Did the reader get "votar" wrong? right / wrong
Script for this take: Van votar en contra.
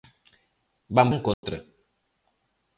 wrong